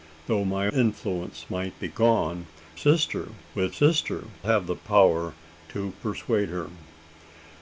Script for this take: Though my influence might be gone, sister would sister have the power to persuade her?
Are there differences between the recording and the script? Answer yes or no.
no